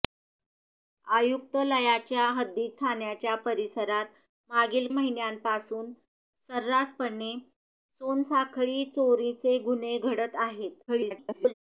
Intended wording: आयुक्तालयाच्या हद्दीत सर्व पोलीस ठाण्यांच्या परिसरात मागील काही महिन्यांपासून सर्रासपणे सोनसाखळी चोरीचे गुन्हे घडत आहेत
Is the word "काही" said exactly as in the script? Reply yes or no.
no